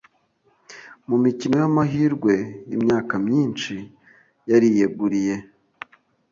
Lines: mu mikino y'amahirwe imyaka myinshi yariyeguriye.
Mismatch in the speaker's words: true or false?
false